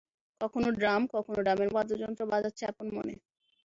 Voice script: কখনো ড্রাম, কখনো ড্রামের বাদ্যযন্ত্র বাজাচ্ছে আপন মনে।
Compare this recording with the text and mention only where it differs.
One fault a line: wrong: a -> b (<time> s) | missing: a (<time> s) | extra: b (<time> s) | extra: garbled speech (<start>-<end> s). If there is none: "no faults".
no faults